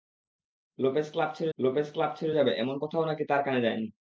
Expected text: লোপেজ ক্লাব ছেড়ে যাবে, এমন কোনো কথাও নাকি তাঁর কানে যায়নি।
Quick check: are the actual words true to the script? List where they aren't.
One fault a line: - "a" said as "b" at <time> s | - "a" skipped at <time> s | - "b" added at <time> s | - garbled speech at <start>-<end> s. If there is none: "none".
- "লোপেজ ক্লাব ছেড়ে" added at 1.6 s
- "কোনো" skipped at 2.8 s